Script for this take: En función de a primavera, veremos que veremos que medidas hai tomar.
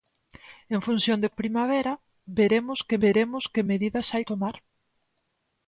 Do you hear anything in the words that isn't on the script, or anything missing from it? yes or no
no